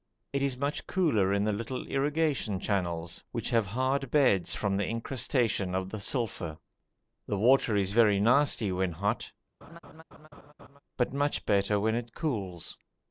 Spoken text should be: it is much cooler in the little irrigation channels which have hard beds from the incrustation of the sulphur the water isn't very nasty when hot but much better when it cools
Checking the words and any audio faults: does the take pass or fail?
fail